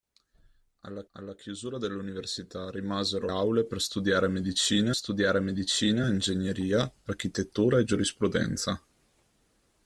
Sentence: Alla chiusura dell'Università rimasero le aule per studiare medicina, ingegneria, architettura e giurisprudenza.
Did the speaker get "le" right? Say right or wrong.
wrong